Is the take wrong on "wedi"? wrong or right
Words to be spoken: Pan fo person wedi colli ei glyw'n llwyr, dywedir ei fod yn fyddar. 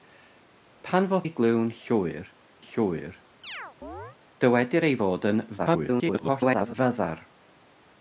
wrong